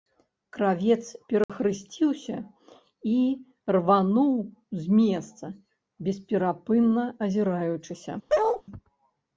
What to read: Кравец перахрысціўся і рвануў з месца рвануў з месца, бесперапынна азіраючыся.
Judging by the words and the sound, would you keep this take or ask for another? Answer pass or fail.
fail